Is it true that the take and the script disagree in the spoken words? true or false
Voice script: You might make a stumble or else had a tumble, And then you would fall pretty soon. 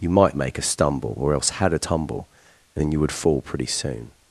false